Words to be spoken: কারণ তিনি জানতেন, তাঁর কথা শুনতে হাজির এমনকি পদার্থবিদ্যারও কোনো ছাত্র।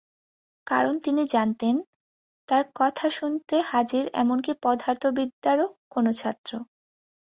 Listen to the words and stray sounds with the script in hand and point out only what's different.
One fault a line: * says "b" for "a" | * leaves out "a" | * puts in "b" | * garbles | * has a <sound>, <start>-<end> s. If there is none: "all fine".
all fine